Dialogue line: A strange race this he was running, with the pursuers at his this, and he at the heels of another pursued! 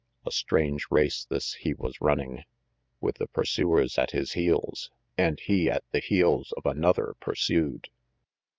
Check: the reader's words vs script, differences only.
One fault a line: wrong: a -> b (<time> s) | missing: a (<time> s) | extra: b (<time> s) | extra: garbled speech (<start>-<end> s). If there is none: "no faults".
wrong: this -> heels (4.3 s)